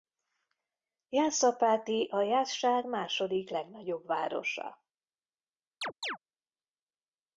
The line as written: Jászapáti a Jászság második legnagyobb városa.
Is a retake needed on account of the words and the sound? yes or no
yes